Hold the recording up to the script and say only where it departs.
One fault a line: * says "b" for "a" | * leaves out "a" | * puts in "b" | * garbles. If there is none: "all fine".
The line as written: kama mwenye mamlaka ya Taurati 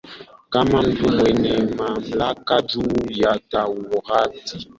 * puts in "mtu"
* puts in "juu"